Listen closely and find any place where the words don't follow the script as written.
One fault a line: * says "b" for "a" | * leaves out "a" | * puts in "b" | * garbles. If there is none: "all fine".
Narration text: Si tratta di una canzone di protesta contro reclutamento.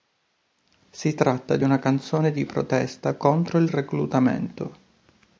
* puts in "il"